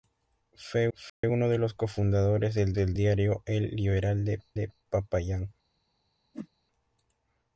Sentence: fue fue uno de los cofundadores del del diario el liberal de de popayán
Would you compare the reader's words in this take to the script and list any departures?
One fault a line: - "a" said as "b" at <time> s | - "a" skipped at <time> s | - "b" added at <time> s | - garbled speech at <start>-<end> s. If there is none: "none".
none